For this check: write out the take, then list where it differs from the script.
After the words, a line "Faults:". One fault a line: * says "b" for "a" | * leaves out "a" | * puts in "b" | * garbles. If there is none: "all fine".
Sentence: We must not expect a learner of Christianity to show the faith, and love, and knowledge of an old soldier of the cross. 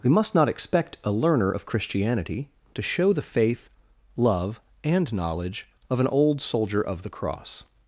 We must not expect a learner of Christianity to show the faith, love, and knowledge of an old soldier of the cross.
Faults:
* leaves out "and"